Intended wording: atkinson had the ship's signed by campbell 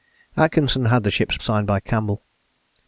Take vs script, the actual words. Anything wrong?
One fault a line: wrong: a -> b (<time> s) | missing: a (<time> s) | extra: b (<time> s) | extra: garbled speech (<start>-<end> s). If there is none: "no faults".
no faults